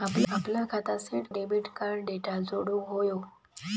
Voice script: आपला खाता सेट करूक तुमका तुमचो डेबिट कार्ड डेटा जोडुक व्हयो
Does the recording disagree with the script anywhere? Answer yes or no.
yes